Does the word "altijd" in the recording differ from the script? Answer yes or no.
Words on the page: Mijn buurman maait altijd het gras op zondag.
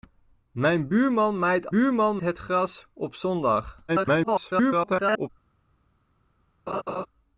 yes